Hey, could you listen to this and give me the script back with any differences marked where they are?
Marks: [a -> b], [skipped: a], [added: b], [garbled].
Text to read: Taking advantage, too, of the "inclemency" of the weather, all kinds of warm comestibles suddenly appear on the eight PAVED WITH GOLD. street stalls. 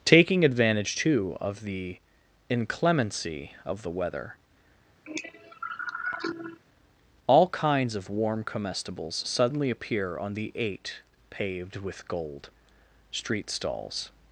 Taking advantage, too, of the "inclemency" of the weather, all kinds of warm comestibles suddenly appear on the eight PAVED WITH GOLD. street stalls.